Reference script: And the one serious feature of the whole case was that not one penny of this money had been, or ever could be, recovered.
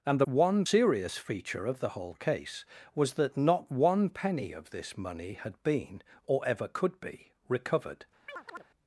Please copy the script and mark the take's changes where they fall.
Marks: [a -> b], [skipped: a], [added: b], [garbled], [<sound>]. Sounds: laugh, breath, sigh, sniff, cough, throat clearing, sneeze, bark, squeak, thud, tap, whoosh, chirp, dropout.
And the one serious feature of the whole case was that not one penny of this money had been, or ever could be, recovered. [chirp]